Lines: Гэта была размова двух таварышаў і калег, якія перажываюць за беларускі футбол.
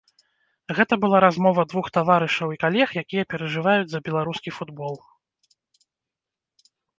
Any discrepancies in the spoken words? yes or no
no